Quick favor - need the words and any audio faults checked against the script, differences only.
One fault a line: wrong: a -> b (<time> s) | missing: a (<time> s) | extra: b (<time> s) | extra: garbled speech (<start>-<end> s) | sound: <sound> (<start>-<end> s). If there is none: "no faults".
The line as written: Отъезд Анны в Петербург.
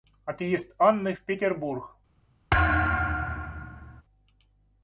sound: thud (2.5-4.0 s)